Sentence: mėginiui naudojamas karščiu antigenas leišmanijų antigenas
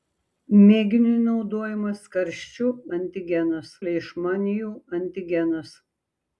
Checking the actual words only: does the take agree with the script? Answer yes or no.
yes